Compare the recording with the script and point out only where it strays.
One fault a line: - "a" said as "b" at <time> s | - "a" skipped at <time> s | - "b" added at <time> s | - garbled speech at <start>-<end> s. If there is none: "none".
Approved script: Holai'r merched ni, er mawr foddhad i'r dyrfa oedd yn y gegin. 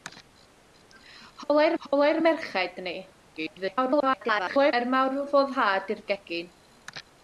- "holai'r" added at 1.8 s
- garbled speech at 3.4-4.7 s
- "dyrfa oedd yn" skipped at 6.1 s